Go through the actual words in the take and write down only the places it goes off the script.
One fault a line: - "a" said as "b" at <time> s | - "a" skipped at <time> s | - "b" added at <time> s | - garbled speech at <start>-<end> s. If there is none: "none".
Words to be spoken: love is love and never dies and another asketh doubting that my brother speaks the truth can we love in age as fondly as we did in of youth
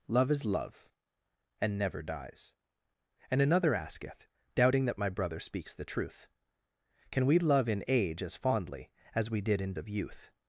none